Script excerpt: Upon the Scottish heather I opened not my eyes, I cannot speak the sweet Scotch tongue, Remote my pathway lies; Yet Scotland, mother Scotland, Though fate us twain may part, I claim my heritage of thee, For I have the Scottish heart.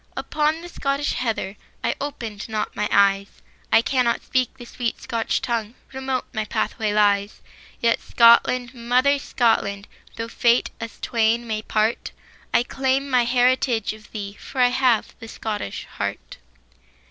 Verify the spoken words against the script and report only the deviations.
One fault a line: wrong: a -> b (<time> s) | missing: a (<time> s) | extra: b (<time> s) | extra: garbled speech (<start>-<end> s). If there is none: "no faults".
no faults